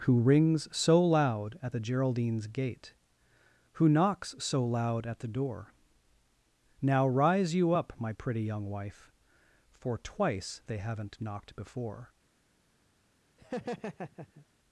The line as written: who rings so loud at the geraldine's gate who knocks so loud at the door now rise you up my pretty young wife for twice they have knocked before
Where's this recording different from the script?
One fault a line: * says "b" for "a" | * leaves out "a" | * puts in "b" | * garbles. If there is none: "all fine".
* says "haven't" for "have"